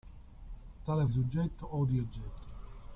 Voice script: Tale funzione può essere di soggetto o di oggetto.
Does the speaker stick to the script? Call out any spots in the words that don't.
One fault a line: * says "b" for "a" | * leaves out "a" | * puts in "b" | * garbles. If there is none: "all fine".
* leaves out "funzione può essere"